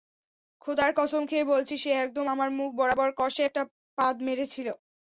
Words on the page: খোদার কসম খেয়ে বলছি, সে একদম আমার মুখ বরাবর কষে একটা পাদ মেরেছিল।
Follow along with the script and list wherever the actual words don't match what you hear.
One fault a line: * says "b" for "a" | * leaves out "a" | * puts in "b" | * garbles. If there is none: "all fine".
all fine